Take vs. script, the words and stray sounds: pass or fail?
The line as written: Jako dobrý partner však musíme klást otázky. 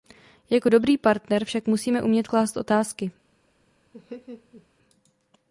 fail